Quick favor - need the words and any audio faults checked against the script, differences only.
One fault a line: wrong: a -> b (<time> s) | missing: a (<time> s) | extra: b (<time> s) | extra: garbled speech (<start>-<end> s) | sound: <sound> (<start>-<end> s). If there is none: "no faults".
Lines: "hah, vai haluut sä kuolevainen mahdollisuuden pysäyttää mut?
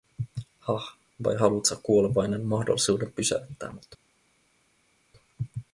no faults